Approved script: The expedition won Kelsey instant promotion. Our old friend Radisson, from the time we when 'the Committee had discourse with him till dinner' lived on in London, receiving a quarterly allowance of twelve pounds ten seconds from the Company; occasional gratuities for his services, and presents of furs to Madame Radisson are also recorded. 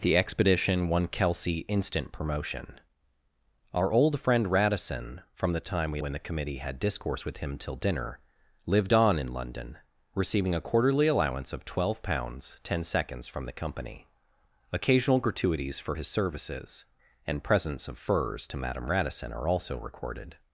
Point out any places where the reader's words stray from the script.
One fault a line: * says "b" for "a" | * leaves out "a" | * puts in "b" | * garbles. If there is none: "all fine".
all fine